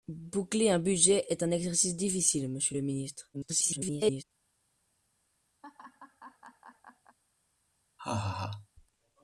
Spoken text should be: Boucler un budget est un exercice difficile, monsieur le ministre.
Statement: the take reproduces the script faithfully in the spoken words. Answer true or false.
false